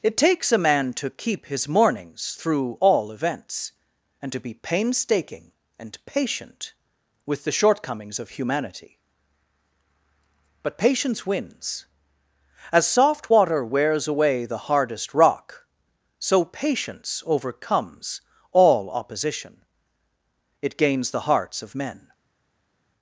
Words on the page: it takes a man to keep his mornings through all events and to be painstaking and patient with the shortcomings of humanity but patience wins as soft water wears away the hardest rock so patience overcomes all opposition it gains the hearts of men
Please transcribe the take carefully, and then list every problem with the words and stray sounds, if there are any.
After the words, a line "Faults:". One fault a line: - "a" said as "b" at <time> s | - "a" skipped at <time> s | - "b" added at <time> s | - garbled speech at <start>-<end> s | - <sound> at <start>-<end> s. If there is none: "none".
it takes a man to keep his mornings through all events and to be painstaking and patient with the shortcomings of humanity but patience wins as soft water wears away the hardest rock so patience overcomes all opposition it gains the hearts of men
Faults:
none